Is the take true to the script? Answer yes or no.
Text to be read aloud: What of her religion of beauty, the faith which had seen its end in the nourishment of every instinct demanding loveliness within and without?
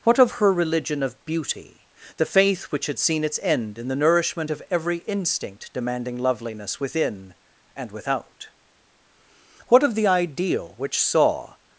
no